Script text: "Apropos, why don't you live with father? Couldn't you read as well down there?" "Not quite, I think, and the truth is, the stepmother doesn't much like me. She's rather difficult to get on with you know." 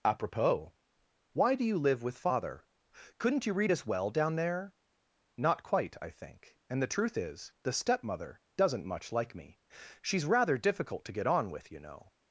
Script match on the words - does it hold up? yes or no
no